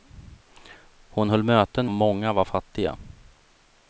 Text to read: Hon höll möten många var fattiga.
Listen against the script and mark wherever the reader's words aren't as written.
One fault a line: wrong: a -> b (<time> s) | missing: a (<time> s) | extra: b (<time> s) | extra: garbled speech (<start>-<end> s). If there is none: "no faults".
no faults